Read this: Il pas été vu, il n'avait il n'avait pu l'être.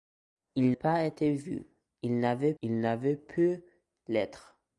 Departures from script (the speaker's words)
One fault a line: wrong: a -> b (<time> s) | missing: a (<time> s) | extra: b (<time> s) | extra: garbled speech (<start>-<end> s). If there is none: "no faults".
no faults